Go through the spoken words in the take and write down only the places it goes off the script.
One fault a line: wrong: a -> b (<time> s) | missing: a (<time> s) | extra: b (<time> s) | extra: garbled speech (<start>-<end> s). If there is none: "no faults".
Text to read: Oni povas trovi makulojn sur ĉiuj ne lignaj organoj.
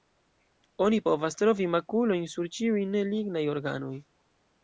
no faults